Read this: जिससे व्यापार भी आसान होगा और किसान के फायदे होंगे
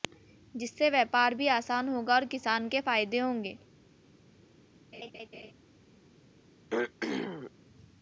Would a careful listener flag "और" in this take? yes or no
no